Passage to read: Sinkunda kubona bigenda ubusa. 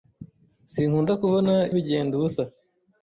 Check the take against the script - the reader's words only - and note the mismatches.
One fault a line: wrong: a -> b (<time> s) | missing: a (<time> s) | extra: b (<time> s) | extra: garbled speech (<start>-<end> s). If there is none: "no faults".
no faults